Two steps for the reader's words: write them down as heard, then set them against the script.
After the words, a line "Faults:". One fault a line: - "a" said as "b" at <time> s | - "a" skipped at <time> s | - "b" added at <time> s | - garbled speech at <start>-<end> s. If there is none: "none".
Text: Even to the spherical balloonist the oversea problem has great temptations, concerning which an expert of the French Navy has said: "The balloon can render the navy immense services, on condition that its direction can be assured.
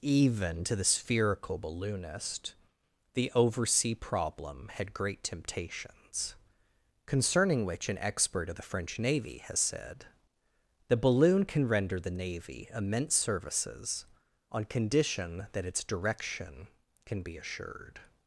Even to the spherical balloonist the oversea problem had great temptations, concerning which an expert of the French Navy has said: "The balloon can render the navy immense services, on condition that its direction can be assured.
Faults:
- "has" said as "had" at 4.7 s